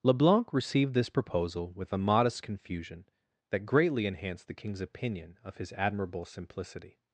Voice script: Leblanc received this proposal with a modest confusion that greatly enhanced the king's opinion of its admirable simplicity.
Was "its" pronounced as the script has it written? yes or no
no